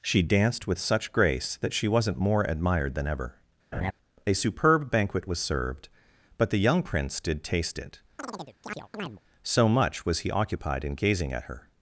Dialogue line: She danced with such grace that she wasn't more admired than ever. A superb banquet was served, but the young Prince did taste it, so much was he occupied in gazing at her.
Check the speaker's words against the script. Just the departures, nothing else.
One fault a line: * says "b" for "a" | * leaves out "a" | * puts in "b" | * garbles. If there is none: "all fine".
all fine